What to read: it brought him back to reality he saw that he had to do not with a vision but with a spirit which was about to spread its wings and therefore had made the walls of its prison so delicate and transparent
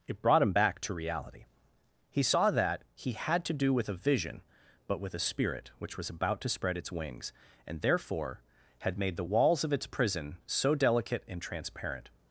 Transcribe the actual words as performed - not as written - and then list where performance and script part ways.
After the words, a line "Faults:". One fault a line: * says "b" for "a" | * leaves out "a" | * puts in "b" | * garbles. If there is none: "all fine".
it brought him back to reality he saw that he had to do with a vision but with a spirit which was about to spread its wings and therefore had made the walls of its prison so delicate and transparent
Faults:
* leaves out "not"